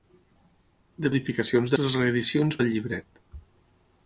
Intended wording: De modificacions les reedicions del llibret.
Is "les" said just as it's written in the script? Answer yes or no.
yes